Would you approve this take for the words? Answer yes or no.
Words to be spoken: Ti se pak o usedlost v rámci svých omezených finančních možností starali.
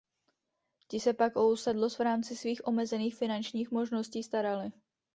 yes